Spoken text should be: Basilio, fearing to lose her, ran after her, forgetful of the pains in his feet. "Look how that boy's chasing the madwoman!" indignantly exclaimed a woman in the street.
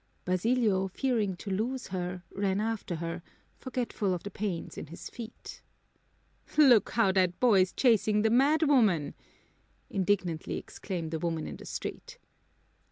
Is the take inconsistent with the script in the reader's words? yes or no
no